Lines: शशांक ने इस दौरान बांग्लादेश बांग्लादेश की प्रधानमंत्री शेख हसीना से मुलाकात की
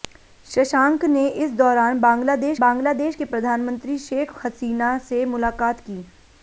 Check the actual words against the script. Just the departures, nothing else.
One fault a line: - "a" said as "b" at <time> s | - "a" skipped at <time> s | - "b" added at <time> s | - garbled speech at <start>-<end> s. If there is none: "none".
none